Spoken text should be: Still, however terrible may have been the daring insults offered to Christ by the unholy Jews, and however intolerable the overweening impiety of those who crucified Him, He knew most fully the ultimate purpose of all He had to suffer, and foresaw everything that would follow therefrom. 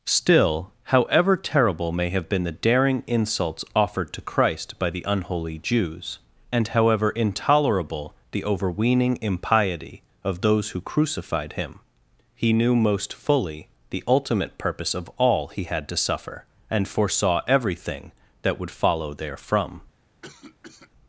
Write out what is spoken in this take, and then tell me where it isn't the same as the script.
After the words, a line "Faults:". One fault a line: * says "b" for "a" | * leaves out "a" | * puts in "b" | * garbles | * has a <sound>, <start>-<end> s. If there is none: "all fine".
Still, however terrible may have been the daring insults offered to Christ by the unholy Jews, and however intolerable the overweening impiety of those who crucified Him, He knew most fully the ultimate purpose of all He had to suffer, and foresaw everything that would follow therefrom.
Faults:
* has a cough, 20.2-20.9 s